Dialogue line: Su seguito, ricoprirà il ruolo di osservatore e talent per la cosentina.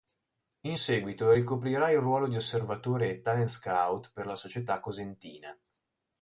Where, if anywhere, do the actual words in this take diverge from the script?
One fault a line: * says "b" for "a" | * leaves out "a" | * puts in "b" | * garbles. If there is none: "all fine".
* says "In" for "Su"
* puts in "scout"
* puts in "società"